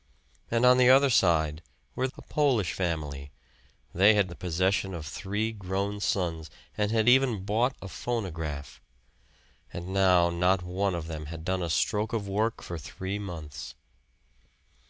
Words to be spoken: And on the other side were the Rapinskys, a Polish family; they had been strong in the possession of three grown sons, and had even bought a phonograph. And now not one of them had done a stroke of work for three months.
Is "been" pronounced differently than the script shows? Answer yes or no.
yes